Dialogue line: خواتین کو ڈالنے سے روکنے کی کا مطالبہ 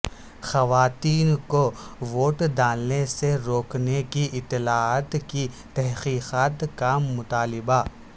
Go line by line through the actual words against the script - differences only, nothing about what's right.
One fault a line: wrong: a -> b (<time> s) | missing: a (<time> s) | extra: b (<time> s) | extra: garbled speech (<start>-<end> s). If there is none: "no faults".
extra: ووٹ (2.0 s)
extra: اطلاعات کی تحقیقات (4.3 s)